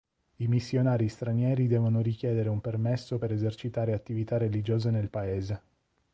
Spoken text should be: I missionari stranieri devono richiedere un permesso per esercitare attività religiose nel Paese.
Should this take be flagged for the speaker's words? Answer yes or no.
no